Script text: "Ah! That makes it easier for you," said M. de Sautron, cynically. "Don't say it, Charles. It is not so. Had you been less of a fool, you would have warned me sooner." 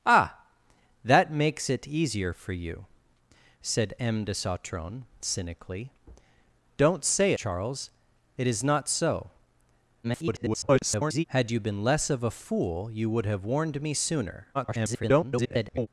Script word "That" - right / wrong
right